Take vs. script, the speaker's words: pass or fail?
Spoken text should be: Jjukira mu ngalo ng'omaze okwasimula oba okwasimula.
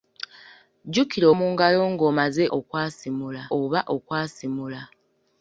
pass